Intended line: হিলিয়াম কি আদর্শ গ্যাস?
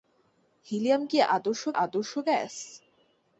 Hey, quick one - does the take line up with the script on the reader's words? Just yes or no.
no